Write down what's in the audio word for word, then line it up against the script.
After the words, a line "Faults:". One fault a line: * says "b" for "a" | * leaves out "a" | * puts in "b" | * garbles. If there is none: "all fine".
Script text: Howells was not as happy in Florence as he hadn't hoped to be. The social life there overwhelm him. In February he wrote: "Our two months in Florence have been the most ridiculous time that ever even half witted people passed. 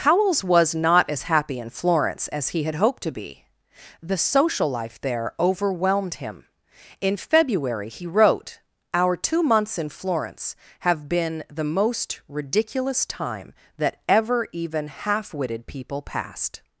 Howells was not as happy in Florence as he had hoped to be. The social life there overwhelmed him. In February he wrote: "Our two months in Florence have been the most ridiculous time that ever even half witted people passed.
Faults:
* says "had" for "hadn't"
* says "overwhelmed" for "overwhelm"